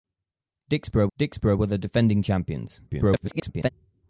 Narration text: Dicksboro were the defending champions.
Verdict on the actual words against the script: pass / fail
fail